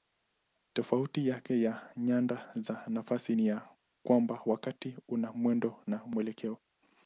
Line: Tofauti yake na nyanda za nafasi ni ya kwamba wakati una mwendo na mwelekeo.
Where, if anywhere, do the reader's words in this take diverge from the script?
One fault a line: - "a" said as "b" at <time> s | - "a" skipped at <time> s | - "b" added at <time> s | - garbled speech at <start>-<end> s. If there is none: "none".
none